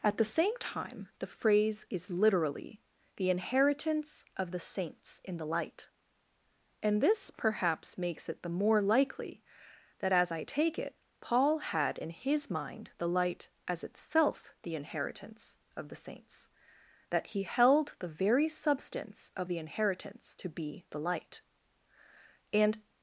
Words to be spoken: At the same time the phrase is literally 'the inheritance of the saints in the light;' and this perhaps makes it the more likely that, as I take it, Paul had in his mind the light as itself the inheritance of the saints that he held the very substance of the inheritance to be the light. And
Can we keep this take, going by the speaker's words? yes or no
yes